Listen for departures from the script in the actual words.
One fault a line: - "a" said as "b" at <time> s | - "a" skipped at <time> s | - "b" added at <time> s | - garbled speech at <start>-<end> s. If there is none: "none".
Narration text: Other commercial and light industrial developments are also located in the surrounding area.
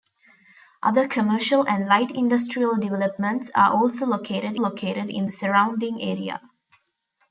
- "located" added at 4.6 s